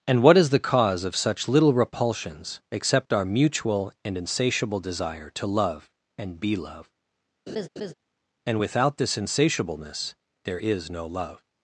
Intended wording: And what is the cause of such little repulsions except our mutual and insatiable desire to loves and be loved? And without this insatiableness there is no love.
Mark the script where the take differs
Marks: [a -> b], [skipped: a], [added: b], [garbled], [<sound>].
And what is the cause of such little repulsions except our mutual and insatiable desire to [loves -> love] and be loved? [laugh] And without this insatiableness there is no love.